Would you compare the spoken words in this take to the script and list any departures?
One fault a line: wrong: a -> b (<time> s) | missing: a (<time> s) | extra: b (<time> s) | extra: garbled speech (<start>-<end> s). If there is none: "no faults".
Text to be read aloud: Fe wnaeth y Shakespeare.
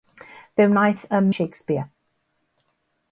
no faults